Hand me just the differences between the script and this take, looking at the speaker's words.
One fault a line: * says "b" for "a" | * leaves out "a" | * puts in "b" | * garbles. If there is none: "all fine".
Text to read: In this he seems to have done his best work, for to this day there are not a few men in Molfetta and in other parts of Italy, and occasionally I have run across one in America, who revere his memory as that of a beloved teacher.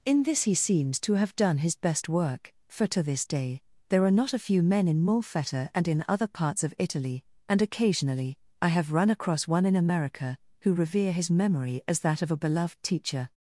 all fine